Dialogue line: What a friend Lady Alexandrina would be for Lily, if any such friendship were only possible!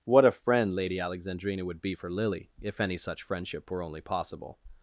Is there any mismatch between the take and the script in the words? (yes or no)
no